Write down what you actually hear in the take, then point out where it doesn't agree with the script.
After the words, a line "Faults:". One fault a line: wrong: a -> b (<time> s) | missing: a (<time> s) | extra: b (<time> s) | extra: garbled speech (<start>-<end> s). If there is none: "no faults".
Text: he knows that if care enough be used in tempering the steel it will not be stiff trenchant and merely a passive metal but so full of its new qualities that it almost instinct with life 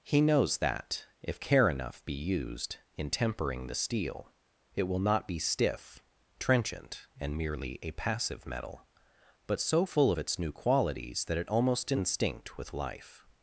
he knows that if care enough be used in tempering the steel it will not be stiff trenchant and merely a passive metal but so full of its new qualities that it almost instinct with life
Faults:
no faults